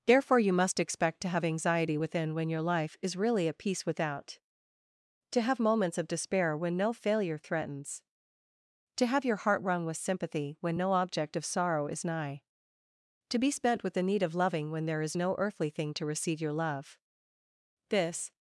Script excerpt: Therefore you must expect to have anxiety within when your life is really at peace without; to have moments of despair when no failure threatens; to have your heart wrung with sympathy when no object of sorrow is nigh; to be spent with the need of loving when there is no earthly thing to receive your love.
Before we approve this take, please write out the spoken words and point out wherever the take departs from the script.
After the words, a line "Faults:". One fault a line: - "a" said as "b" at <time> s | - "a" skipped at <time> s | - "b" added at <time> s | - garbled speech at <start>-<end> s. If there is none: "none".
Therefore you must expect to have anxiety within when your life is really at peace without; to have moments of despair when no failure threatens; to have your heart wrung with sympathy when no object of sorrow is nigh; to be spent with the need of loving when there is no earthly thing to receive your love. This
Faults:
- "This" added at 17.9 s